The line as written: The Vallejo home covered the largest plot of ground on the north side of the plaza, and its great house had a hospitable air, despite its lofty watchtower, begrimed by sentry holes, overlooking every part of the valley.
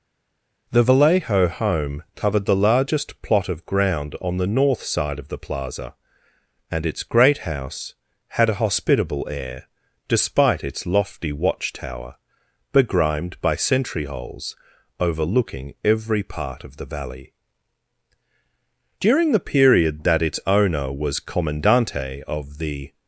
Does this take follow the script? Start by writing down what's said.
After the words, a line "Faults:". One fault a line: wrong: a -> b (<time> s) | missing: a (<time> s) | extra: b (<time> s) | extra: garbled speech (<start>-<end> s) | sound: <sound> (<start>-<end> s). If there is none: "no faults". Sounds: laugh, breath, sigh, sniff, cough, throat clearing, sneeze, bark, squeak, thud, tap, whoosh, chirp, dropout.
The Vallejo home covered the largest plot of ground on the north side of the plaza, and its great house had a hospitable air, despite its lofty watchtower, begrimed by sentry holes, overlooking every part of the valley. During the period that its owner was commandante of the
Faults:
extra: During the period that its owner was commandante of the (19.0 s)